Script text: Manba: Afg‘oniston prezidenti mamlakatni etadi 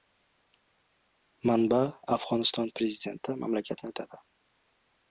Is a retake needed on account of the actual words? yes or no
no